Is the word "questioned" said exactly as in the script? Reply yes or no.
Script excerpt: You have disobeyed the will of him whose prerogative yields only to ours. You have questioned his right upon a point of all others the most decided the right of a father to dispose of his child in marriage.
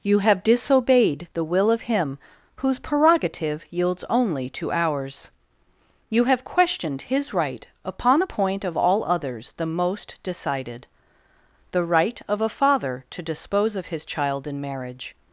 yes